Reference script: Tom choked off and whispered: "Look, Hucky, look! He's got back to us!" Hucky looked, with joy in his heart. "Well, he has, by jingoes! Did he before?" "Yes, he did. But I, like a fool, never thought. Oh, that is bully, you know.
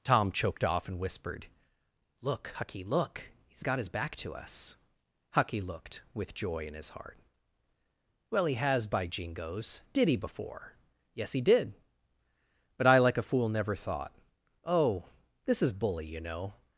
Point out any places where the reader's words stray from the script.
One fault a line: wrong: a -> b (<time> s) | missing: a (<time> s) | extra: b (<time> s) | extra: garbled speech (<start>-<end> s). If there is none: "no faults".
extra: his (3.8 s)
wrong: that -> this (15.5 s)